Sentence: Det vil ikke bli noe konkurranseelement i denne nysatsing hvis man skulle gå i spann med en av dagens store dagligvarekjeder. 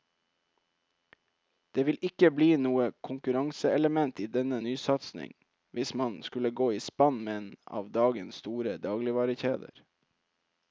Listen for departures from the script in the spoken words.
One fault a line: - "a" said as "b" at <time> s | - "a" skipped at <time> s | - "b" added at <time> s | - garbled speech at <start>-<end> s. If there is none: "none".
none